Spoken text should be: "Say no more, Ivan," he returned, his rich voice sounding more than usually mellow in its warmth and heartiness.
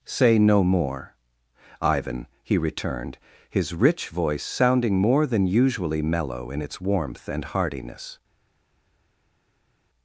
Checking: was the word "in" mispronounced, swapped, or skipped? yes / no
no